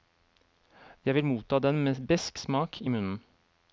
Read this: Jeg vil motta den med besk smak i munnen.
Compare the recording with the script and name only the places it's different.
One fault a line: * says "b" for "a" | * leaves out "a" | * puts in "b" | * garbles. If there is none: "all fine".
all fine